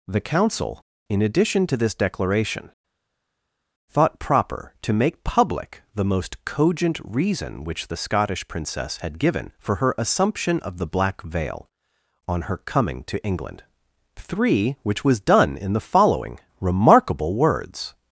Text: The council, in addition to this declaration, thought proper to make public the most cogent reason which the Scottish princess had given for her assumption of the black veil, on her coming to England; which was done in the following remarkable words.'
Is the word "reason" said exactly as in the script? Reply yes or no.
yes